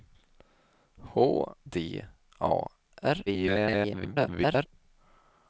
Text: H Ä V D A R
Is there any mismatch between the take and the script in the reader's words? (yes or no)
yes